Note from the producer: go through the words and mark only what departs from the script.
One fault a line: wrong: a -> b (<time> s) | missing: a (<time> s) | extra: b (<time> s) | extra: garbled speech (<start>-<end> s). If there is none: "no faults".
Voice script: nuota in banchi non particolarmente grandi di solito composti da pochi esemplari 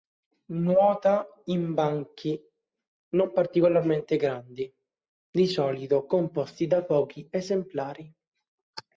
no faults